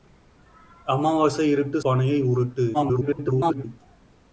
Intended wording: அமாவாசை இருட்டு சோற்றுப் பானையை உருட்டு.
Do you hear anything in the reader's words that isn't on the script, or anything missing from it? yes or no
yes